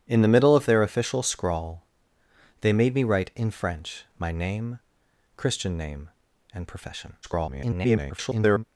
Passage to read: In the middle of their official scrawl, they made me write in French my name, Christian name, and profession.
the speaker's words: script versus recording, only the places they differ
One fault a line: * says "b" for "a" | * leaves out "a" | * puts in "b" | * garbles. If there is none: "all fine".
* garbles